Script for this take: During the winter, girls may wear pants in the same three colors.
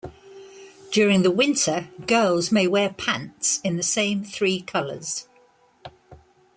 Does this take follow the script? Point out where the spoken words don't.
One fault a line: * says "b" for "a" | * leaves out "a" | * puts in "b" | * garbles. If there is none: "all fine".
all fine